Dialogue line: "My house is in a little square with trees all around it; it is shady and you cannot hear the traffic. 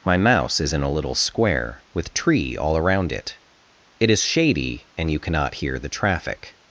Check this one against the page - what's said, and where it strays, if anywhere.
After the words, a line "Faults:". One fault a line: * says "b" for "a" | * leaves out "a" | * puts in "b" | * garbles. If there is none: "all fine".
"My mouse is in a little square with tree all around it; it is shady and you cannot hear the traffic.
Faults:
* says "mouse" for "house"
* says "tree" for "trees"